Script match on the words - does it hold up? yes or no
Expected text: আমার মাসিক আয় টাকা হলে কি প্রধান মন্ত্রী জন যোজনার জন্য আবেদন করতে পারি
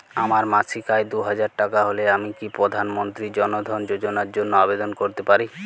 no